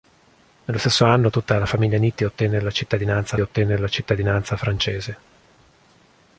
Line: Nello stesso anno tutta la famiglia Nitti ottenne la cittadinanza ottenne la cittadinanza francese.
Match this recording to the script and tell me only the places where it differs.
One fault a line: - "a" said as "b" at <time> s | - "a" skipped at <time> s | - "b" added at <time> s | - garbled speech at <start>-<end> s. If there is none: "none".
none